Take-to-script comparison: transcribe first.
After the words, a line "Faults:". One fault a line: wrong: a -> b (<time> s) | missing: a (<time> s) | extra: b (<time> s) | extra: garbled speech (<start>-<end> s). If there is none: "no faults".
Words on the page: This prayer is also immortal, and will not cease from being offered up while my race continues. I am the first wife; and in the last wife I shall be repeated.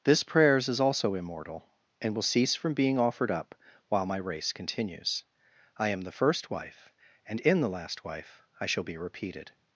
This prayers is also immortal, and will cease from being offered up while my race continues. I am the first wife; and in the last wife I shall be repeated.
Faults:
wrong: prayer -> prayers (0.2 s)
missing: not (2.2 s)